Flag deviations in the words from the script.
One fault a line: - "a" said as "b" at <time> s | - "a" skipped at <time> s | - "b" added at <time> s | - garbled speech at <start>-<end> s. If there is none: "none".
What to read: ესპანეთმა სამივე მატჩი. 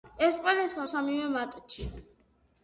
none